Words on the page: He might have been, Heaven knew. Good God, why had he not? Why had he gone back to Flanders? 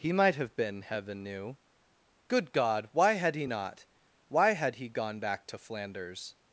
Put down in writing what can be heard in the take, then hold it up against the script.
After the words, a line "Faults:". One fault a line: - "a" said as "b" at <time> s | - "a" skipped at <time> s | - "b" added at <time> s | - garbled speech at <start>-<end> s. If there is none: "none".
He might have been, Heaven knew. Good God, why had he not? Why had he gone back to Flanders?
Faults:
none